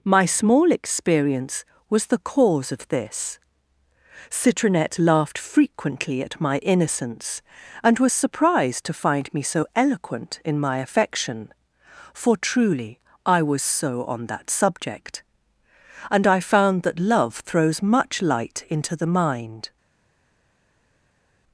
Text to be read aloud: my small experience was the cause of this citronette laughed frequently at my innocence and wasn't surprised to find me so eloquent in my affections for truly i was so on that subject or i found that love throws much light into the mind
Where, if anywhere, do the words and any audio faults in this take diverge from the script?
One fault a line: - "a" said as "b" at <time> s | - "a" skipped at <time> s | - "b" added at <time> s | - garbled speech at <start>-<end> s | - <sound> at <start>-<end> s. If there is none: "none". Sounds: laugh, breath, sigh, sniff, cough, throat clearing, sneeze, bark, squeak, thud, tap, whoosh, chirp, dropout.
- "wasn't" said as "was" at 8.0 s
- "affections" said as "affection" at 10.8 s
- "or" said as "and" at 16.1 s